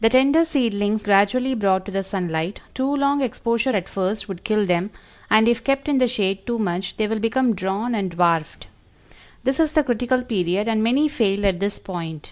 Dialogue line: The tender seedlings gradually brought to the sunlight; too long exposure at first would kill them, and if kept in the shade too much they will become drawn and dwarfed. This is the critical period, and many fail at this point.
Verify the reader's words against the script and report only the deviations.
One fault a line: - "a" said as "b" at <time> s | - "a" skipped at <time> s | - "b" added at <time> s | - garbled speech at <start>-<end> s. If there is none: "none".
none